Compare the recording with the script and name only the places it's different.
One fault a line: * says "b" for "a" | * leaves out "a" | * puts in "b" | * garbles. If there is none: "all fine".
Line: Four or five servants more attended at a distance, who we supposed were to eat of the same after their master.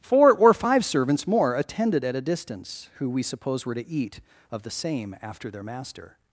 * says "suppose" for "supposed"